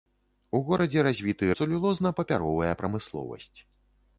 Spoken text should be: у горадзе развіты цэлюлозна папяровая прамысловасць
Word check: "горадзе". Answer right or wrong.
right